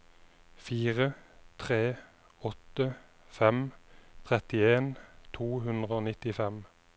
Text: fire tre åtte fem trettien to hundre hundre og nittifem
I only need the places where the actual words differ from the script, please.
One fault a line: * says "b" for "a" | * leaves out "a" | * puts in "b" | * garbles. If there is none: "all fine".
* leaves out "hundre"